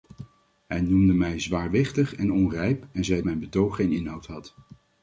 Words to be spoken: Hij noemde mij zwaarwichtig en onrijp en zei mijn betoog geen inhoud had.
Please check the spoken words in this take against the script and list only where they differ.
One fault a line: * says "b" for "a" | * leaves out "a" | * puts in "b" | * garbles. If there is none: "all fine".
all fine